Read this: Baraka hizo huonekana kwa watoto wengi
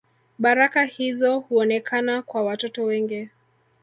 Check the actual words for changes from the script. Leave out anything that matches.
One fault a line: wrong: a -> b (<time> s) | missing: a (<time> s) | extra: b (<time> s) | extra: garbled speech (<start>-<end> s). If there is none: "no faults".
no faults